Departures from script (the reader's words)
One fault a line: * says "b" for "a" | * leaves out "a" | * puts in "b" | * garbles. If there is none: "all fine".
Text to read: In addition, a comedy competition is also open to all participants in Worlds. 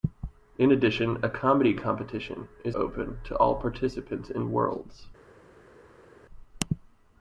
* leaves out "also"